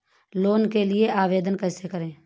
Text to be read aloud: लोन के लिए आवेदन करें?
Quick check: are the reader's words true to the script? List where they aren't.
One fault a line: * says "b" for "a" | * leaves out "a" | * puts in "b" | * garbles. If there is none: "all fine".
* puts in "कैसे"